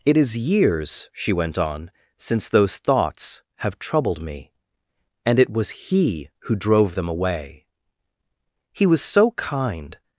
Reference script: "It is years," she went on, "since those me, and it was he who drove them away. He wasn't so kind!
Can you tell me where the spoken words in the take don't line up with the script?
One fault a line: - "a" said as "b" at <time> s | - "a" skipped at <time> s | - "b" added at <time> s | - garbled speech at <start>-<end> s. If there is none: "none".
- "thoughts have troubled" added at 2.8 s
- "wasn't" said as "was" at 8.9 s